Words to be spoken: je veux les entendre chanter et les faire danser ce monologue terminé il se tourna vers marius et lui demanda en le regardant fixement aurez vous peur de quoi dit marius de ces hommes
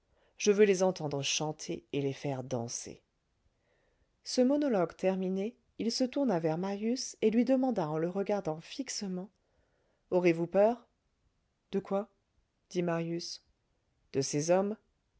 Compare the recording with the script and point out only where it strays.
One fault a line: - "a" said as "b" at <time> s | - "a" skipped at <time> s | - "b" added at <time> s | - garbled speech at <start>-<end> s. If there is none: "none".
none